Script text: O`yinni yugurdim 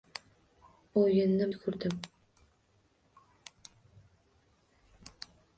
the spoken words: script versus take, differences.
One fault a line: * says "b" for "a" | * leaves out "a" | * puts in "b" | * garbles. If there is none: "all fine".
all fine